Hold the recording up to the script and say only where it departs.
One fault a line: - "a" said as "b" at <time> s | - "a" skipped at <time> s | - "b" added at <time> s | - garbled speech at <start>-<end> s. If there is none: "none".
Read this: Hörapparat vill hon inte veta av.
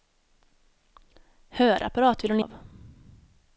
- "inte veta" skipped at 2.4 s